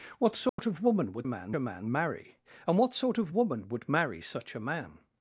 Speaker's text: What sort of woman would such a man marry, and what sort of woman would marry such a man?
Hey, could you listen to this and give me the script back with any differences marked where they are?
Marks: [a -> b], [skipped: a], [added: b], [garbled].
What sort of woman would [such -> man] a man marry, and what sort of woman would marry such a man?